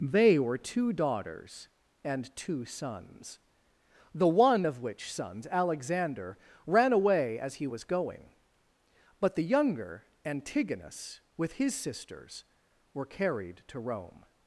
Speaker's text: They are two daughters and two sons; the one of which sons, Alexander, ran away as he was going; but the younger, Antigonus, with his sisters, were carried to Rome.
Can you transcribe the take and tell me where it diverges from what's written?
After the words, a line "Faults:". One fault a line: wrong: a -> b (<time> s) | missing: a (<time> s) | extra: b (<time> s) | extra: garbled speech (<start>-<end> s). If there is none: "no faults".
They were two daughters and two sons; the one of which sons, Alexander, ran away as he was going; but the younger, Antigonus, with his sisters, were carried to Rome.
Faults:
wrong: are -> were (0.4 s)